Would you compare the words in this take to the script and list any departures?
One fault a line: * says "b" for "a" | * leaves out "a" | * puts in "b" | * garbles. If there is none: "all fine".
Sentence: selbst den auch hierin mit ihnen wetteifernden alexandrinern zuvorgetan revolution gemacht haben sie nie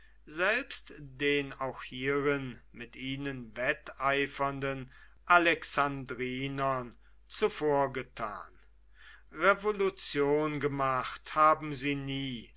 all fine